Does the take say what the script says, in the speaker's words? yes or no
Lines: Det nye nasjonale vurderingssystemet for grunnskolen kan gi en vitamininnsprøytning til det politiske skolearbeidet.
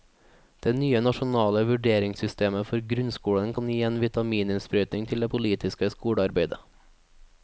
yes